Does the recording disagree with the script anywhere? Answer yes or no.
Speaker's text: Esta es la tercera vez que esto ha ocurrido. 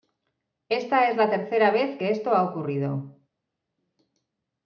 no